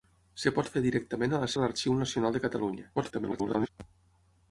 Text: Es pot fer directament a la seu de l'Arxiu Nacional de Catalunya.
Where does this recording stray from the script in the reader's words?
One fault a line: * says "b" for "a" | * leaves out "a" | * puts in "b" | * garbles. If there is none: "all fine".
* leaves out "seu"
* garbles